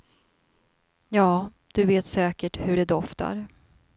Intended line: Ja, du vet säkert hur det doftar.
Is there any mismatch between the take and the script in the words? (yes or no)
no